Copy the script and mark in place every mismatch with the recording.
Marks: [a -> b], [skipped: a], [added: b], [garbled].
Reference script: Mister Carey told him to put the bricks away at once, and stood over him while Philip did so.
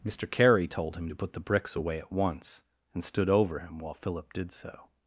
Mister Carey told him to put the bricks away at once, and stood over him while Philip did so.